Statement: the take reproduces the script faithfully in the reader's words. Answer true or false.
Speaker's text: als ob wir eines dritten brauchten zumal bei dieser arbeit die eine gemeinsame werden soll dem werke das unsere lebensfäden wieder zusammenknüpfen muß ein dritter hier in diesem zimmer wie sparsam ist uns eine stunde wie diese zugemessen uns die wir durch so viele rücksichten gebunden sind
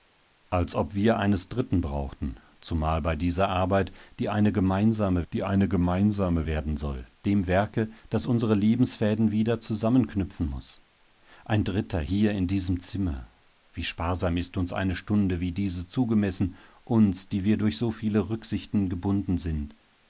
false